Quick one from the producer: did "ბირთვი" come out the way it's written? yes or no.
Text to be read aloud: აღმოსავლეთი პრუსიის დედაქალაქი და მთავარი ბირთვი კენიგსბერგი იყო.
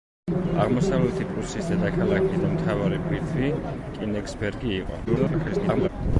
yes